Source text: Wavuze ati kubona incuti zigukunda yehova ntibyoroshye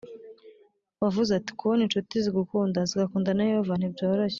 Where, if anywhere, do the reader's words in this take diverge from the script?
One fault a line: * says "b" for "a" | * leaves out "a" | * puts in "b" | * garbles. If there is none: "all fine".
* puts in "zigakunda na"